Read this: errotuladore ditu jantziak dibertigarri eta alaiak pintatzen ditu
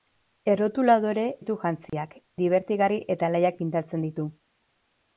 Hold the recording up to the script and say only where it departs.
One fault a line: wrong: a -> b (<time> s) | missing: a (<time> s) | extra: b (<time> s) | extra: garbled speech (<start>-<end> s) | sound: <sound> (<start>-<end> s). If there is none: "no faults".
sound: dropout (1.9-1.9 s)